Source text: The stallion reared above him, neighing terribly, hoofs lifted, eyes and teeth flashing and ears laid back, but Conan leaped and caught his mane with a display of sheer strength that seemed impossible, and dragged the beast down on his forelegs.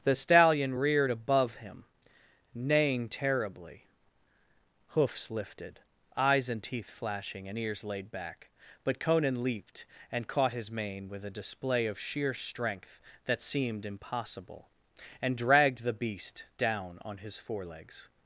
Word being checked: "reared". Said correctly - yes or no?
yes